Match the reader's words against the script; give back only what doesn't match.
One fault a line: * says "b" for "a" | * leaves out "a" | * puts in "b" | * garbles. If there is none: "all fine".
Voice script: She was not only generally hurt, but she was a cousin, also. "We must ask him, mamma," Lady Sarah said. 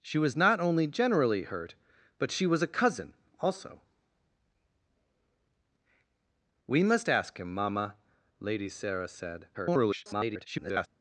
* garbles